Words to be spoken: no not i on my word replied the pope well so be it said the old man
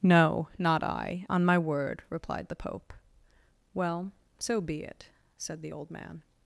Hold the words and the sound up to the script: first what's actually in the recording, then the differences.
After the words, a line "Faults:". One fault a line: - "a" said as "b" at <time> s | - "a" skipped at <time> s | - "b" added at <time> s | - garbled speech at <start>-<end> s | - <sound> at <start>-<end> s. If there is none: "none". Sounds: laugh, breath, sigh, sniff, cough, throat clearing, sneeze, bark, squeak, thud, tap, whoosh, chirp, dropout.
no not i on my word replied the pope well so be it said the old man
Faults:
none